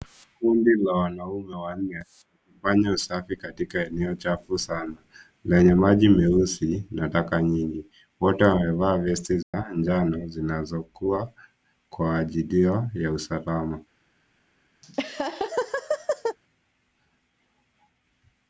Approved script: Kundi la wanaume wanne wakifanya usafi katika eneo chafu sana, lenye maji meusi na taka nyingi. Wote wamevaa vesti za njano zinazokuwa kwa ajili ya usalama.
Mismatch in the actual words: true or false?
false